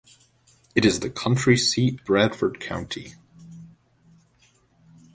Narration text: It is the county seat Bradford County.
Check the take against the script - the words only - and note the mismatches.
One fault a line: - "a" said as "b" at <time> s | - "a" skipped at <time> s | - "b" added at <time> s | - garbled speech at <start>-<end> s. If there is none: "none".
none